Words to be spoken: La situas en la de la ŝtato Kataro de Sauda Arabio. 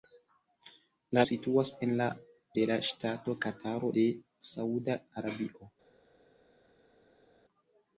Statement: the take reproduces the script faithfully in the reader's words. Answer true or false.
true